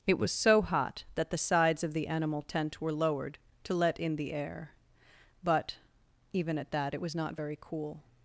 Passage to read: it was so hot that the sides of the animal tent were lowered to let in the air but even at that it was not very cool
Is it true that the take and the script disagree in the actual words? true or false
false